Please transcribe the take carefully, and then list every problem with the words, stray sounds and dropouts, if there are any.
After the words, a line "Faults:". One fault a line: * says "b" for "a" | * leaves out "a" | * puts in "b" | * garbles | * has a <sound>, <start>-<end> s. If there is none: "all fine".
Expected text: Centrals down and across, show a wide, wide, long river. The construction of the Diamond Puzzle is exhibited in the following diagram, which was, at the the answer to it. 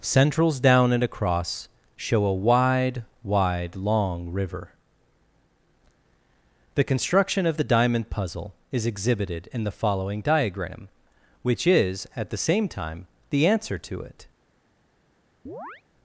Centrals down and across, show a wide, wide, long river. The construction of the Diamond Puzzle is exhibited in the following diagram, which is, at the same time, the answer to it.
Faults:
* says "is" for "was"
* puts in "same time"
* has a chirp, 15.5-15.8 s